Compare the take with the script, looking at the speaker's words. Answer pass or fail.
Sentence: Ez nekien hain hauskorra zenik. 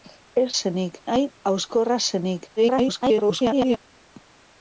fail